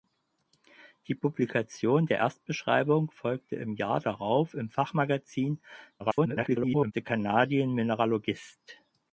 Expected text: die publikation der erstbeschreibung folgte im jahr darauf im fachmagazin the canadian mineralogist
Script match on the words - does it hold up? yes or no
no